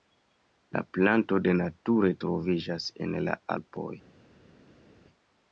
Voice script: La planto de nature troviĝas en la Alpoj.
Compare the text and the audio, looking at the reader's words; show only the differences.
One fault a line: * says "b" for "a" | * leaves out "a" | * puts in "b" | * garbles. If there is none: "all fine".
all fine